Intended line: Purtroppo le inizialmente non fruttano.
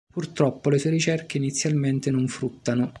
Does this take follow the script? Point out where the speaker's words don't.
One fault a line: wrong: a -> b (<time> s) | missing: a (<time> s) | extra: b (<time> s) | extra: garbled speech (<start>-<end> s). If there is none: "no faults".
extra: sue ricerche (0.8 s)